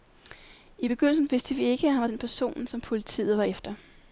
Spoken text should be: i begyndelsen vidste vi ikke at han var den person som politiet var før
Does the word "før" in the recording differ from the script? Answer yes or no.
yes